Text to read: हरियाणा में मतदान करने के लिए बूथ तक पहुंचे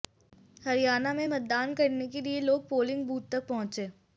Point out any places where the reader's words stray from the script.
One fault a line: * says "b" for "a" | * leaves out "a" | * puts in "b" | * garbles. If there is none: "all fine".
* puts in "लोग पोलिंग"